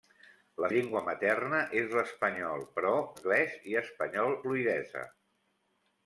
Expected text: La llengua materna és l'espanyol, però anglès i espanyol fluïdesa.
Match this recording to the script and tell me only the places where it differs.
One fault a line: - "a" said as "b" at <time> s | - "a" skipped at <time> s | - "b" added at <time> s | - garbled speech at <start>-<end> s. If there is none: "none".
none